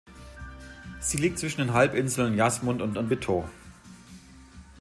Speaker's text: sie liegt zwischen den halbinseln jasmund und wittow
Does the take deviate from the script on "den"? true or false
false